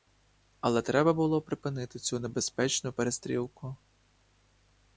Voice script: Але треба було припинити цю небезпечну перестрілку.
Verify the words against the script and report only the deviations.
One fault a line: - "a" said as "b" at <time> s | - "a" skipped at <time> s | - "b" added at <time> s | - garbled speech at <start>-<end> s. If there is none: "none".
none